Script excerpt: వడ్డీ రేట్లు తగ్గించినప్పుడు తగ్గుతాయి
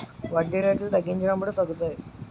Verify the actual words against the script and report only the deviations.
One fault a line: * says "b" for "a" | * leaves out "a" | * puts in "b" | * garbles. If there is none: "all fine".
all fine